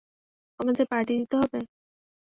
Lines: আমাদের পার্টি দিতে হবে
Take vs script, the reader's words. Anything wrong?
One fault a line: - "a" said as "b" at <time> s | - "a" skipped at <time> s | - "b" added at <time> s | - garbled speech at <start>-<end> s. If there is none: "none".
none